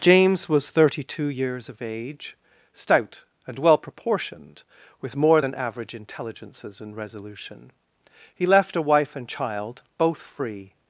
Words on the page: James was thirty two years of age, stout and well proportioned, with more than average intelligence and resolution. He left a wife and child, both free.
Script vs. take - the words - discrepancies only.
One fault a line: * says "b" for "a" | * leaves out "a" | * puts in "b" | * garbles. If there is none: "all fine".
* says "intelligences" for "intelligence"